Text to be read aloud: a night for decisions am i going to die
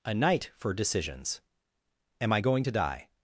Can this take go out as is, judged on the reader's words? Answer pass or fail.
pass